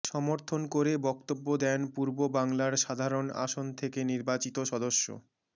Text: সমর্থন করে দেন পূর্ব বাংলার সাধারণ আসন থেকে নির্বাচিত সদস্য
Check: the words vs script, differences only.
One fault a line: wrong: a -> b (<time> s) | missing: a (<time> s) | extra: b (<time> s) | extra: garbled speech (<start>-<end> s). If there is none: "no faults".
extra: বক্তব্য (1.1 s)